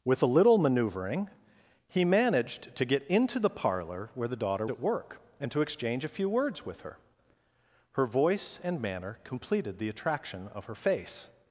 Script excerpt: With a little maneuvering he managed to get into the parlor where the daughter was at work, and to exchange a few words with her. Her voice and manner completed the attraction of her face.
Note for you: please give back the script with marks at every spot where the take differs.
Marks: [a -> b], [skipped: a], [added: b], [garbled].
With a little maneuvering he managed to get into the parlor where the daughter [skipped: was] at work, and to exchange a few words with her. Her voice and manner completed the attraction of her face.